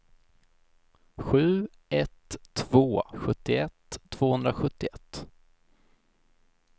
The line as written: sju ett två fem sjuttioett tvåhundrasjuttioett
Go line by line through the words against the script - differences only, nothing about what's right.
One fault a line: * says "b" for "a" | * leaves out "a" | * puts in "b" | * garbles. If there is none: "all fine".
* leaves out "fem"